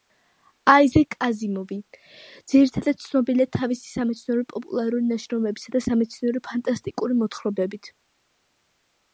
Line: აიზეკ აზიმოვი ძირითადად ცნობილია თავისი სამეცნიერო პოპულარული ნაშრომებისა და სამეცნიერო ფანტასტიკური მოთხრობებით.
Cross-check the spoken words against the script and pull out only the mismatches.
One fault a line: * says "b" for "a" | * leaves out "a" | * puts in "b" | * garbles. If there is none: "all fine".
all fine